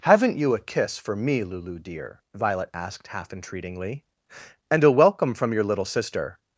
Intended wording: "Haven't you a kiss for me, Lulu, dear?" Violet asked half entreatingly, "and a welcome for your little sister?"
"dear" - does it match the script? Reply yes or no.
yes